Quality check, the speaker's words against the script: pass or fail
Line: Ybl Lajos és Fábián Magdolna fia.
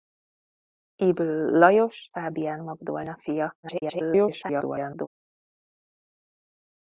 fail